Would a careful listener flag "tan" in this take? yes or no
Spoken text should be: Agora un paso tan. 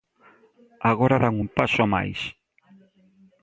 yes